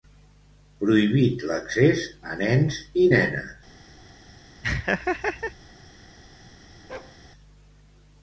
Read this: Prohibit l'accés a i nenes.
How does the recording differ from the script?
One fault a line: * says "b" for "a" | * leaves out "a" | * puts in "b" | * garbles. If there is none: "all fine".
* puts in "nens"